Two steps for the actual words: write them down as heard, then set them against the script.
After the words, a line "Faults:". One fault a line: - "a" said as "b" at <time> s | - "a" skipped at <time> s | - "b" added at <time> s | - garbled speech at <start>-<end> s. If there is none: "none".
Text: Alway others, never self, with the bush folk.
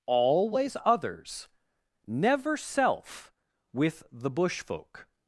Always others, never self, with the bush folk.
Faults:
- "Alway" said as "Always" at 0.1 s